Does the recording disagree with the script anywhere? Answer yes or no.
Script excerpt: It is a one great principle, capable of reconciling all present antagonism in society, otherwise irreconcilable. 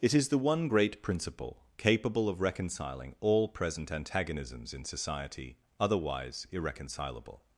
yes